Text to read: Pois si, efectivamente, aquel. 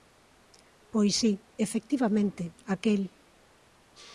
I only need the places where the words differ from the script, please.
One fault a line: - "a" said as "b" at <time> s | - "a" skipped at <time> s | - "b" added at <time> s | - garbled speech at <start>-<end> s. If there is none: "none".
none